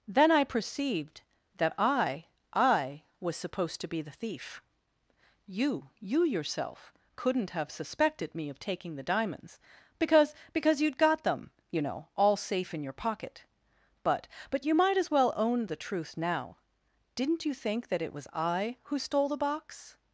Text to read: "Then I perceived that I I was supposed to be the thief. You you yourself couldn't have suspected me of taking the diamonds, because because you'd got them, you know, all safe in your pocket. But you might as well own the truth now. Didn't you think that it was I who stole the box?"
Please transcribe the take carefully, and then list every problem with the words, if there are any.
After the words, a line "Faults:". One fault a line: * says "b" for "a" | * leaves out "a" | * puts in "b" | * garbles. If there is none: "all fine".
"Then I perceived that I I was supposed to be the thief. You you yourself couldn't have suspected me of taking the diamonds, because because you'd got them, you know, all safe in your pocket. But But you might as well own the truth now. Didn't you think that it was I who stole the box?"
Faults:
* puts in "But"